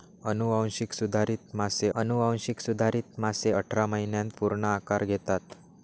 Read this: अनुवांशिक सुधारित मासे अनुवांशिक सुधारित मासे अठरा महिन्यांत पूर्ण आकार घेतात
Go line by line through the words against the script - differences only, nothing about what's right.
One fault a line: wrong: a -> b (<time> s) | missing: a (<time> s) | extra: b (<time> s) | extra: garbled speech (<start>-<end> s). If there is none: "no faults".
no faults